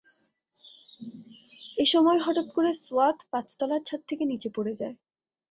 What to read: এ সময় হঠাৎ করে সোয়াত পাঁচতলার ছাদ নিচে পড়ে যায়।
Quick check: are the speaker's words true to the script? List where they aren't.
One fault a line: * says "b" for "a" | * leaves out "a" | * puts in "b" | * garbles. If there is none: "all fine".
* puts in "থেকে"